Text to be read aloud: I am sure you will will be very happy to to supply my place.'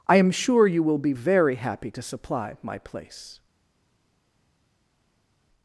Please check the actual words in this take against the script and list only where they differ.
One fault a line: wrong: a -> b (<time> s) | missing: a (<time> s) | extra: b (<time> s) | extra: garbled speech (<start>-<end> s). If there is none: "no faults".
missing: will (1.0 s)
missing: to (2.0 s)